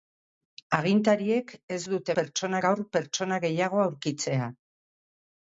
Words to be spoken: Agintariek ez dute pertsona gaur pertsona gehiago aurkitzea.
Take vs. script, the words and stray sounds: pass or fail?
pass